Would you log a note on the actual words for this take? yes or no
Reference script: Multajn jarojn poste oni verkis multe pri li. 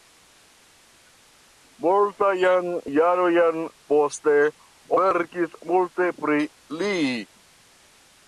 yes